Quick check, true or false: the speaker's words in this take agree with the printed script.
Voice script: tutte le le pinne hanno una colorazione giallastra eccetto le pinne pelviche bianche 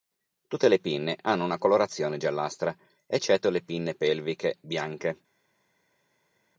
false